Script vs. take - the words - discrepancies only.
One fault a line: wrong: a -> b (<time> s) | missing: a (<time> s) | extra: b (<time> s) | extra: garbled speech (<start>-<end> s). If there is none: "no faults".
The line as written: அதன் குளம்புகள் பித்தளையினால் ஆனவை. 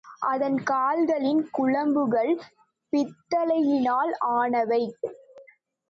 extra: கால்களின் (0.6 s)